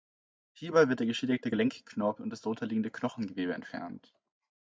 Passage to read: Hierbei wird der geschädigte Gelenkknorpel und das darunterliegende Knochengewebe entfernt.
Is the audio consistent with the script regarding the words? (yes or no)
yes